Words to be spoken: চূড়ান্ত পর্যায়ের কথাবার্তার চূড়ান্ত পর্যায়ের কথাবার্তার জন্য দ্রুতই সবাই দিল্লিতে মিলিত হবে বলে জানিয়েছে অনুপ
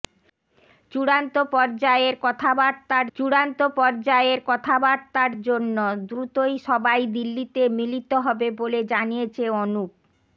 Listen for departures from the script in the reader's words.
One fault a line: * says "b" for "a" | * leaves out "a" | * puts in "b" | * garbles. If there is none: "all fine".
all fine